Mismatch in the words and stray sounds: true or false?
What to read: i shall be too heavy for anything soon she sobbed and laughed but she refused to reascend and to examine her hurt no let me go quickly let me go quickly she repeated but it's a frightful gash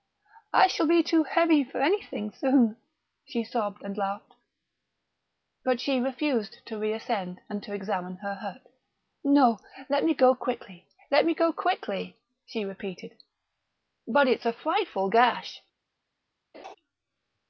true